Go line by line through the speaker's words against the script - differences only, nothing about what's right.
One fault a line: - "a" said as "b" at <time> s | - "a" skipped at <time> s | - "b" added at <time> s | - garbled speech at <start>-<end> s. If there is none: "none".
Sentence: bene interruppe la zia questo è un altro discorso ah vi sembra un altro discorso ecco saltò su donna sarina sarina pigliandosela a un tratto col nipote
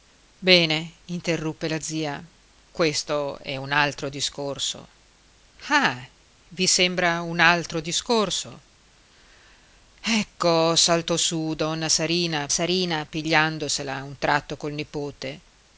none